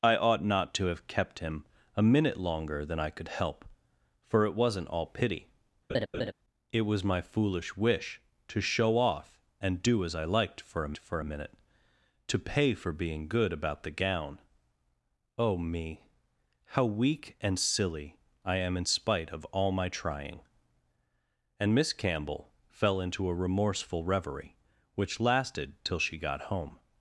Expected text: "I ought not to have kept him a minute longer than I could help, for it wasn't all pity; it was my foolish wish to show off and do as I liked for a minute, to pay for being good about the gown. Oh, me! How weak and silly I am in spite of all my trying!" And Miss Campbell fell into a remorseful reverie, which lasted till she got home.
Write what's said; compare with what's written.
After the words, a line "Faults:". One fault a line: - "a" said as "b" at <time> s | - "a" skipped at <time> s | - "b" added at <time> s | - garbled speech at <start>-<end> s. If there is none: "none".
"I ought not to have kept him a minute longer than I could help, for it wasn't all pity; it was my foolish wish to show off and do as I liked for a for a minute, to pay for being good about the gown. Oh, me! How weak and silly I am in spite of all my trying!" And Miss Campbell fell into a remorseful reverie, which lasted till she got home.
Faults:
- "for a" added at 11.0 s